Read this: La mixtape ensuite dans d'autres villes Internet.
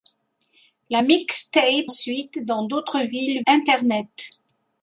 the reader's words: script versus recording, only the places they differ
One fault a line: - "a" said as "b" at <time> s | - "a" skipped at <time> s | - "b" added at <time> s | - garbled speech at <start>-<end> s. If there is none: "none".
none